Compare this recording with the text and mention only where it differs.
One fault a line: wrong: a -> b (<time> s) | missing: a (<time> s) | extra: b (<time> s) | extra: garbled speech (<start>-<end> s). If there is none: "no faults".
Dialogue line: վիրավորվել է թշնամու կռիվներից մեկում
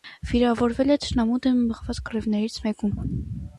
extra: դեմ մղված (1.4 s)